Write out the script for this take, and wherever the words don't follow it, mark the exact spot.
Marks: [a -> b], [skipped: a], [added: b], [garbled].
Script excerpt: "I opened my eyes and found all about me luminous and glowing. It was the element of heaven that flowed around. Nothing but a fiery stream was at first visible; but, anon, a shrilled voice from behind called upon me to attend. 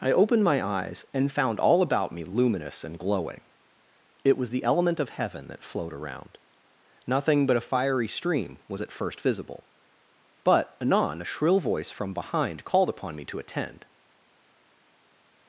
"I opened my eyes and found all about me luminous and glowing. It was the element of heaven that flowed around. Nothing but a fiery stream was at first visible; but, anon, a [shrilled -> shrill] voice from behind called upon me to attend.